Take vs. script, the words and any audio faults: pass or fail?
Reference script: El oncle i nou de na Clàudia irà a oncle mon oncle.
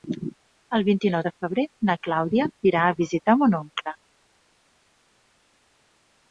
fail